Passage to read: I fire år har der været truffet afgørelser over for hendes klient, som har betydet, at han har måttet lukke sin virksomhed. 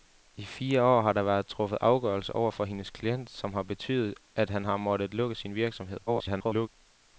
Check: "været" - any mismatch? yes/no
no